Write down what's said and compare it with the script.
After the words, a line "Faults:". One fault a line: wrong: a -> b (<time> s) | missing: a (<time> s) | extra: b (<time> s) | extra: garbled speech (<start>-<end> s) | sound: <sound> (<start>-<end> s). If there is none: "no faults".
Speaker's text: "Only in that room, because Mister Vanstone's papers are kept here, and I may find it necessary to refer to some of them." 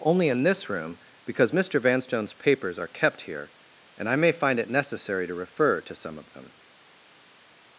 "Only in this room, because Mister Vanstone's papers are kept here, and I may find it necessary to refer to some of them."
Faults:
wrong: that -> this (0.4 s)